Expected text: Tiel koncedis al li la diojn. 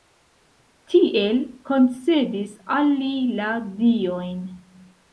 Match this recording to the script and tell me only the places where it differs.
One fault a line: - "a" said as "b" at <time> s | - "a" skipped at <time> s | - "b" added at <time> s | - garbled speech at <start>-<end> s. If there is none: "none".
none